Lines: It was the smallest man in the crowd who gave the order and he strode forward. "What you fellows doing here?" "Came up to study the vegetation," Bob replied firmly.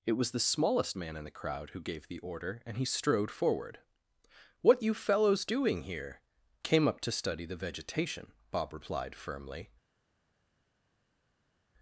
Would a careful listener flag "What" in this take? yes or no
no